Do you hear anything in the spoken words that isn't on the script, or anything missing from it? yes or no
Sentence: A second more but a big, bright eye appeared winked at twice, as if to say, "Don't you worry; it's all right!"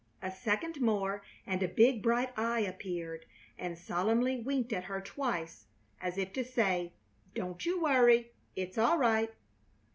yes